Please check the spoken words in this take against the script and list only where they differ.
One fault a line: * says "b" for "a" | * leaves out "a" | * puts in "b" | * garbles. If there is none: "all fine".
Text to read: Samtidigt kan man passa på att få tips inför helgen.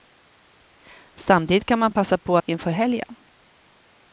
* leaves out "att få tips"